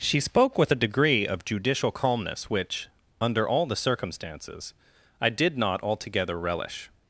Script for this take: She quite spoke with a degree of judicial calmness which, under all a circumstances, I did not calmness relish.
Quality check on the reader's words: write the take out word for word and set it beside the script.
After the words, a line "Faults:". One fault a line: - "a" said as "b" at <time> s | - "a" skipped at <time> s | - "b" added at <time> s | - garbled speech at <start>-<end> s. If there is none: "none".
She spoke with a degree of judicial calmness which, under all the circumstances, I did not altogether relish.
Faults:
- "quite" skipped at 0.2 s
- "a" said as "the" at 3.7 s
- "calmness" said as "altogether" at 5.8 s